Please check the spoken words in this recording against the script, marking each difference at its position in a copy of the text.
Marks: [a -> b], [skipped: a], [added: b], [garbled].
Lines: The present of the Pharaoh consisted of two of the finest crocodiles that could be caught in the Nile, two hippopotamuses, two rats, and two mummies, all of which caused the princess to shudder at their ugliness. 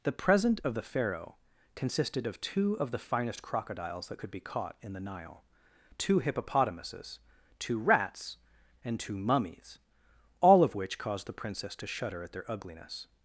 The present of the Pharaoh consisted of two of the finest crocodiles that could be caught in the Nile, two hippopotamuses, two rats, and two mummies, all of which caused the princess to shudder at their ugliness.